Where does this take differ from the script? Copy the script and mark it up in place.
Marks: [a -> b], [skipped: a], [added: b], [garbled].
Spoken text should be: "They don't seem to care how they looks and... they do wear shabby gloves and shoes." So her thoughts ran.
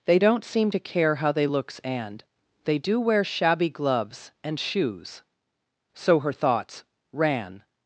"They don't seem to care how they looks and... they do wear shabby gloves and shoes." So her thoughts ran.